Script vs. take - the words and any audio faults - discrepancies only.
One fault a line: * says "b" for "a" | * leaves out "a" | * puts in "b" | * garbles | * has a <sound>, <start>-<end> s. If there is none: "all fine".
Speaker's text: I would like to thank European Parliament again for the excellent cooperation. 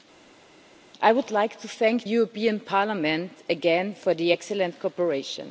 all fine